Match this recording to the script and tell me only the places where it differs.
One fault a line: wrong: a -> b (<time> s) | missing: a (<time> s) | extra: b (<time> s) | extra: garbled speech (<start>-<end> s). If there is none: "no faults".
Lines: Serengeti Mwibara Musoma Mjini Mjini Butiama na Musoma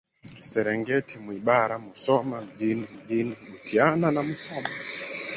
no faults